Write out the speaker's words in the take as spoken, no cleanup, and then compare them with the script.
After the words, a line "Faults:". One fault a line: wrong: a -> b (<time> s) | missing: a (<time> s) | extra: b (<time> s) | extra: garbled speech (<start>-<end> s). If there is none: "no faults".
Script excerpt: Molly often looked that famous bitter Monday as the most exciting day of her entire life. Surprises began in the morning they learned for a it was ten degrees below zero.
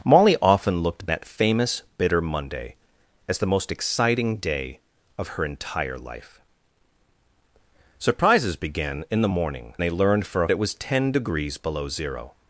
Molly often looked that famous bitter Monday as the most exciting day of her entire life. Surprises began in the morning they learned for a it was ten degrees below zero.
Faults:
no faults